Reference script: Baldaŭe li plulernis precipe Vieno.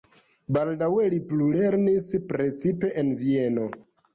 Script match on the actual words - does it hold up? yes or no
no